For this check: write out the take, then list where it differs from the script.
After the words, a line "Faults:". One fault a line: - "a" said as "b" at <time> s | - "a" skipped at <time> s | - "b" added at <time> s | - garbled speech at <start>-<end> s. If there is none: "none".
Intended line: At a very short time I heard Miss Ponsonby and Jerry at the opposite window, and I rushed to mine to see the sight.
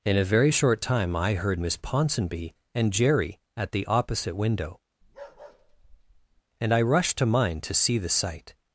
In a very short time I heard Miss Ponsonby and Jerry at the opposite window, and I rushed to mine to see the sight.
Faults:
- "At" said as "In" at 0.0 s